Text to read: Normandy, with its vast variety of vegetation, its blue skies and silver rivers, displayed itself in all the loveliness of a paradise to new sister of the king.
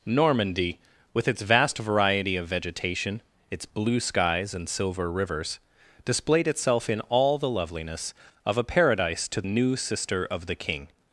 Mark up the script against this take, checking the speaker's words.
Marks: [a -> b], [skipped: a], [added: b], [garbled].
Normandy, with its vast variety of vegetation, its blue skies and silver rivers, displayed itself in all the loveliness of a paradise to new sister of the king.